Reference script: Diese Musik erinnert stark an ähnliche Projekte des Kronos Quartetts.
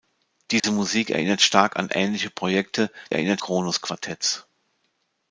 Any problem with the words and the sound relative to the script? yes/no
yes